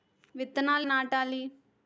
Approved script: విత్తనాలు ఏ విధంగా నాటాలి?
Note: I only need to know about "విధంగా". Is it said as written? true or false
false